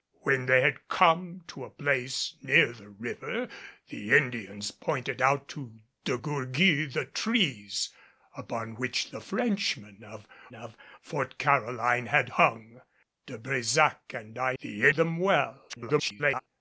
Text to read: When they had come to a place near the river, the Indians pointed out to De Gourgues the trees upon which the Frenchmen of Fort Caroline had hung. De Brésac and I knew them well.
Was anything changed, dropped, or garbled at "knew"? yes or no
yes